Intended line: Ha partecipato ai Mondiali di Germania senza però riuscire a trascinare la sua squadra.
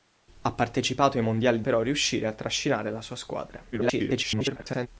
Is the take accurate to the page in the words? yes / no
no